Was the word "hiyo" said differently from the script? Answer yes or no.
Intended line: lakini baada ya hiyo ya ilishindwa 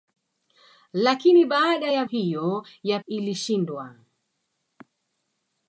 no